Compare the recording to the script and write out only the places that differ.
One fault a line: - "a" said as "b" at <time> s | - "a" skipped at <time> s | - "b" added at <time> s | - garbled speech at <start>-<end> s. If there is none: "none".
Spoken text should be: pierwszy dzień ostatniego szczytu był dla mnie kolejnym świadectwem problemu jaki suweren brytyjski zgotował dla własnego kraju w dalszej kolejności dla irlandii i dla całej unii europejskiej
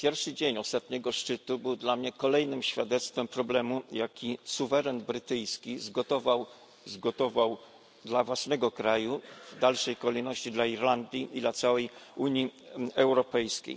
- "zgotował" added at 6.9 s